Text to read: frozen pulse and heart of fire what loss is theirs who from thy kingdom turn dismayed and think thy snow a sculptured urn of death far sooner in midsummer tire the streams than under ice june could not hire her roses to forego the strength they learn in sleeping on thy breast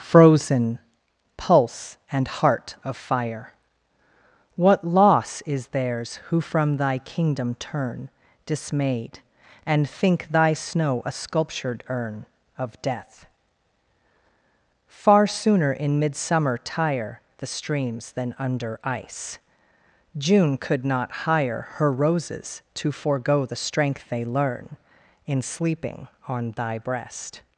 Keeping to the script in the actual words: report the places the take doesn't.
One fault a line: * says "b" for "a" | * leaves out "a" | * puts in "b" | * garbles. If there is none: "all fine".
all fine